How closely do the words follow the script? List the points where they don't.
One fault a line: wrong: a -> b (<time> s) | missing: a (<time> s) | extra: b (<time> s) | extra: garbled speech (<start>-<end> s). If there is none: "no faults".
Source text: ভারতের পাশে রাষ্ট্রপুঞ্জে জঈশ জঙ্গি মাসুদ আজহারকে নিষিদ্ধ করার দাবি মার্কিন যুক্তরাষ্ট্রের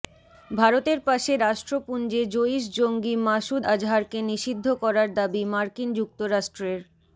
no faults